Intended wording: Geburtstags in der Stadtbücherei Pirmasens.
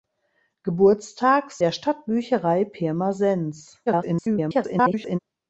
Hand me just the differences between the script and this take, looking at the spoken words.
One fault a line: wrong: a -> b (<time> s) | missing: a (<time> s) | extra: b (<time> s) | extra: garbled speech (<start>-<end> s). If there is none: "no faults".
missing: in (1.6 s)
extra: garbled speech (3.9-5.2 s)